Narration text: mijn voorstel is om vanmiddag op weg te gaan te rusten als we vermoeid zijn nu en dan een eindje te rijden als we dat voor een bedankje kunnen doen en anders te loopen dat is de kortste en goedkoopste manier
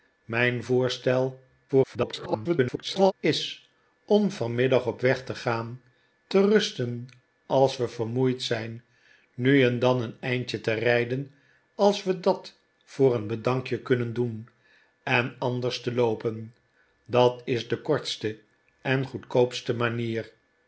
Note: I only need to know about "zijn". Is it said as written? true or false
true